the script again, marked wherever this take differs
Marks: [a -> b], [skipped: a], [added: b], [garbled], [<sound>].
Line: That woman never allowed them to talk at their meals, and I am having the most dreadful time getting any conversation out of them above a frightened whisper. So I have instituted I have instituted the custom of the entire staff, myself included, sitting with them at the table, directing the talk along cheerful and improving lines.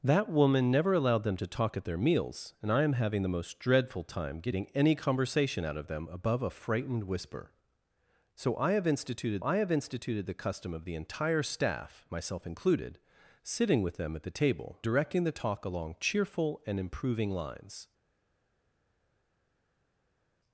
That woman never allowed them to talk at their meals, and I am having the most dreadful time getting any conversation out of them above a frightened whisper. So I have instituted I have instituted the custom of the entire staff, myself included, sitting with them at the table, directing the talk along cheerful and improving lines.